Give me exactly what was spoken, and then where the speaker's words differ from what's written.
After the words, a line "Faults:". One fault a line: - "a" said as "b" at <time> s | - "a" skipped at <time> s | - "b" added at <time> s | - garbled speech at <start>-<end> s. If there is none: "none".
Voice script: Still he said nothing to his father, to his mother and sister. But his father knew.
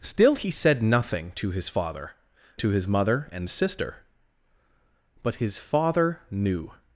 Still he said nothing to his father, to his mother and sister. But his father knew.
Faults:
none